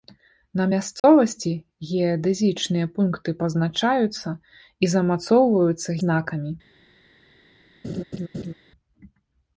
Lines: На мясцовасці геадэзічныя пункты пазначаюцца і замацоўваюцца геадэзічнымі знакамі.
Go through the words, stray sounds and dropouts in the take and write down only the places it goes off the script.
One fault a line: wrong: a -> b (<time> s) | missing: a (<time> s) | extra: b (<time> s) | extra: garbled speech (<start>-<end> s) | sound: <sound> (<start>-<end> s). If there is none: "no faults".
sound: dropout (1.0-1.0 s)
missing: геадэзічнымі (5.9 s)
sound: laugh (7.8-8.5 s)